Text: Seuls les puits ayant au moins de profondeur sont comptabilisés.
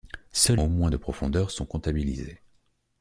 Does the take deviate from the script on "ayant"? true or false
true